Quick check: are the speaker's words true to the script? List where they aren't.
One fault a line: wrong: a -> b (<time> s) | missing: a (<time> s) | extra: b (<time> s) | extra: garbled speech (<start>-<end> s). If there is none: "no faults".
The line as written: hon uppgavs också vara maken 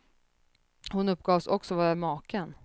no faults